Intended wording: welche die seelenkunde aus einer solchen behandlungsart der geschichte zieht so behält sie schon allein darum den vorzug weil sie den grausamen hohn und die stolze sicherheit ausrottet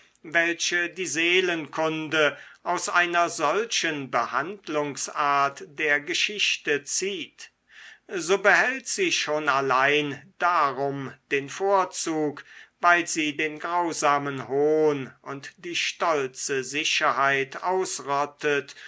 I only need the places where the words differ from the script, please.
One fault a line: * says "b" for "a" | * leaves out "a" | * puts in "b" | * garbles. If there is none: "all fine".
all fine